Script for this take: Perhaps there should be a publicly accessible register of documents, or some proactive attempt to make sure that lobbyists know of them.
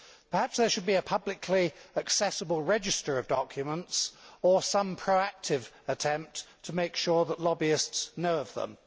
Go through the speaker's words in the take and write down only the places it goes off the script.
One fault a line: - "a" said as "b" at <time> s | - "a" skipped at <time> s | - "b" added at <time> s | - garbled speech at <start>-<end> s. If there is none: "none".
none